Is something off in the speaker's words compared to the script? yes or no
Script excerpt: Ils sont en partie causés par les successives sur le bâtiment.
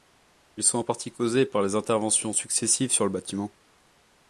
yes